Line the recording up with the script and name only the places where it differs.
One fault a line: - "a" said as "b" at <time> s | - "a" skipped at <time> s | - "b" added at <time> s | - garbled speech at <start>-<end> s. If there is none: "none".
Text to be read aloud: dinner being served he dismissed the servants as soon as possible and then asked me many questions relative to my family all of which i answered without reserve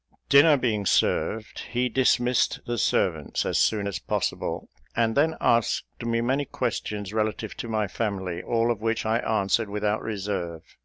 none